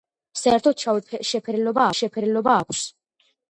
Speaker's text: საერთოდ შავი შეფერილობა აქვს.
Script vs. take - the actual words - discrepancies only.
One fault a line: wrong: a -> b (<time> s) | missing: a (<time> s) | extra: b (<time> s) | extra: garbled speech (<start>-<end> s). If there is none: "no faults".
extra: შეფერილობა (2.0 s)